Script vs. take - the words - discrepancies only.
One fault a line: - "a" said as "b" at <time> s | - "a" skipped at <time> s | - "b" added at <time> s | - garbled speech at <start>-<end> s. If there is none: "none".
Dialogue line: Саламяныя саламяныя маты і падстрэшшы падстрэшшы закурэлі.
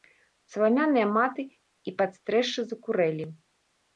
- "саламяныя" skipped at 1.1 s
- "падстрэшшы" skipped at 2.6 s